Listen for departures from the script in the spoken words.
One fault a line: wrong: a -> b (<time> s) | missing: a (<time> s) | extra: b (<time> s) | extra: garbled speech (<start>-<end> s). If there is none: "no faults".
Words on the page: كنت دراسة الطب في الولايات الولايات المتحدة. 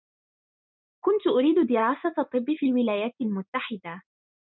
extra: أريد (1.3 s)
missing: الولايات (3.1 s)